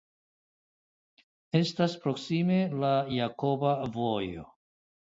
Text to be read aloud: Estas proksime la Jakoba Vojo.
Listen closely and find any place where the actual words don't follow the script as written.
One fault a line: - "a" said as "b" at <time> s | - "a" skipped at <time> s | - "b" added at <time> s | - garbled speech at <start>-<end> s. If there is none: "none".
none